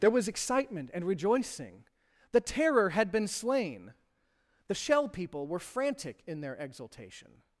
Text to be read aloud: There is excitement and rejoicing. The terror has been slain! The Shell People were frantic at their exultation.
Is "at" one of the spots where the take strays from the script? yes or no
yes